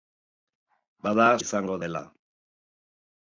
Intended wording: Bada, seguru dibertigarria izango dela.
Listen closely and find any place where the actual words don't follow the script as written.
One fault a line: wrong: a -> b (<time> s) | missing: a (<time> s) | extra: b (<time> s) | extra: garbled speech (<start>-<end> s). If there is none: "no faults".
missing: seguru dibertigarria (1.3 s)